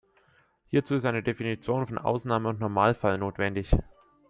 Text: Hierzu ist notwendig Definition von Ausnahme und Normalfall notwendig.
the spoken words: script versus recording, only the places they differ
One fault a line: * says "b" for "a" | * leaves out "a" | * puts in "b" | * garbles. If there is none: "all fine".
* says "eine" for "notwendig"